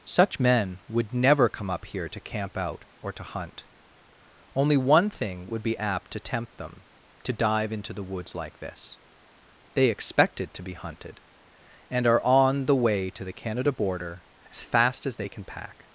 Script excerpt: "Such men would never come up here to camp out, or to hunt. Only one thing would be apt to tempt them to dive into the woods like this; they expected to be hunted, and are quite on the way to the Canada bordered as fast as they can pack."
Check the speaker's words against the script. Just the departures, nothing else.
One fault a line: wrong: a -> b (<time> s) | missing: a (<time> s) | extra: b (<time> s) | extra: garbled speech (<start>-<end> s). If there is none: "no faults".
missing: quite (12.2 s)
wrong: bordered -> border (13.7 s)